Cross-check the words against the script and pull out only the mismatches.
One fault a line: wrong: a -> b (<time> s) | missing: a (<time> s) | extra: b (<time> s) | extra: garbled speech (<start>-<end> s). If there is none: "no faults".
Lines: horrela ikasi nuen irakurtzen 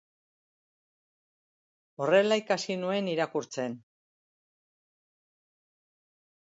no faults